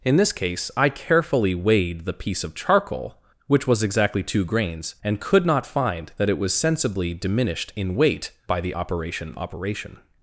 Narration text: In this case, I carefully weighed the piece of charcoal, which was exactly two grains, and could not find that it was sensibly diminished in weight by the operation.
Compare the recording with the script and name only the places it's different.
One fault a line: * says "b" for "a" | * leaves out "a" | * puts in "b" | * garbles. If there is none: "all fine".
* puts in "operation"